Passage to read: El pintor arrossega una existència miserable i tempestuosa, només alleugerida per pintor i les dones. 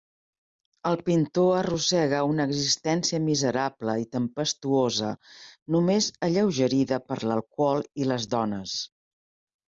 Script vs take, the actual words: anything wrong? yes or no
yes